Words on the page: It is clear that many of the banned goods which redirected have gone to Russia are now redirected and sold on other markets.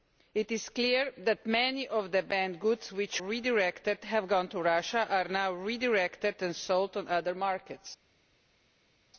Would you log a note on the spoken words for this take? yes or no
no